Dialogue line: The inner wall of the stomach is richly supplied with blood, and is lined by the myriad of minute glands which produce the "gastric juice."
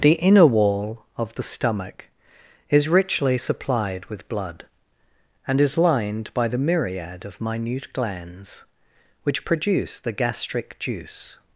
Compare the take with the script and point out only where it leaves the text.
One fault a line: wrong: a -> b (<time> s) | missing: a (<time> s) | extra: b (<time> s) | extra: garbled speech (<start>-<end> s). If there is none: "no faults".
no faults